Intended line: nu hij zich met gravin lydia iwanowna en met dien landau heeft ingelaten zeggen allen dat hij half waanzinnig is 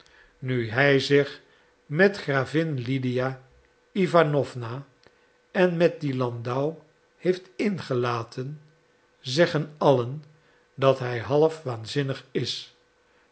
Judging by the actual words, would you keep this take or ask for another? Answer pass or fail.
pass